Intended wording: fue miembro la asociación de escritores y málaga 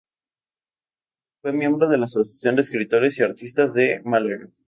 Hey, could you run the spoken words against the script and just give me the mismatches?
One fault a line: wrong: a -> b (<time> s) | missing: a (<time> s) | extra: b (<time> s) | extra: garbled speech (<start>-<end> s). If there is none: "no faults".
extra: de (1.9 s)
extra: artistas de (3.2 s)